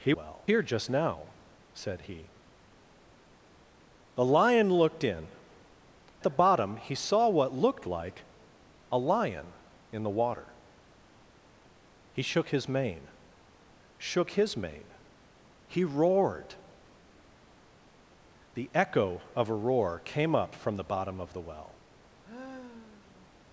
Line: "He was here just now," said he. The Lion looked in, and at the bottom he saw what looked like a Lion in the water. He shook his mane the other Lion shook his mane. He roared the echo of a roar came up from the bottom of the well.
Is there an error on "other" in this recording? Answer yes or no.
yes